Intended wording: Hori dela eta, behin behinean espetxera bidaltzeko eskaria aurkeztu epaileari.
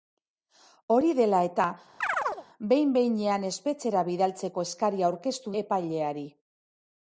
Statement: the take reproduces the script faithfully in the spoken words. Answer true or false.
true